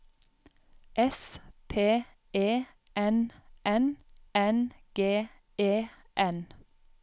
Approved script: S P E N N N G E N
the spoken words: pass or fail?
pass